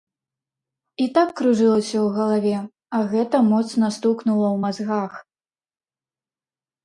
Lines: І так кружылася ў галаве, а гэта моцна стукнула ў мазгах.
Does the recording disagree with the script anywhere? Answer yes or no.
no